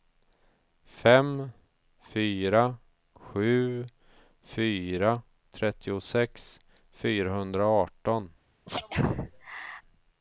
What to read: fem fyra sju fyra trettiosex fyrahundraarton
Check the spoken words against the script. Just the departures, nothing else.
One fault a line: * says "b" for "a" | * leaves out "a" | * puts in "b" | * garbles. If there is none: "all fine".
all fine